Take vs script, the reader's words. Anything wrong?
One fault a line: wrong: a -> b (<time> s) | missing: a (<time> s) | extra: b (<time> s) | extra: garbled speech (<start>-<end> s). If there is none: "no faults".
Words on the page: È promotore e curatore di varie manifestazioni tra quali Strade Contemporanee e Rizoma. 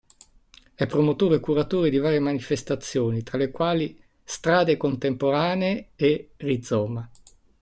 extra: le (3.4 s)